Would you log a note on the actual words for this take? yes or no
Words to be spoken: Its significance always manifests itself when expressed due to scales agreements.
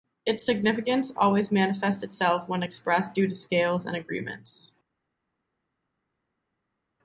yes